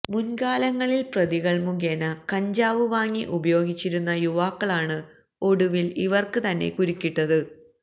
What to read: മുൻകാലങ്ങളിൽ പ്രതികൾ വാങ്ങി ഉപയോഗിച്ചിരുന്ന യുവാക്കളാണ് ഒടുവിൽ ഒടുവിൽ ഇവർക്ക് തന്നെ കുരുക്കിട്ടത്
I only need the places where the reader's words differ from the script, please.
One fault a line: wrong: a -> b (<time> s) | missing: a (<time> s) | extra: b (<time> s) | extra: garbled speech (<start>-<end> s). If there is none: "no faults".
extra: മുഖേന കഞ്ചാവ് (1.6 s)
missing: ഒടുവിൽ (5.9 s)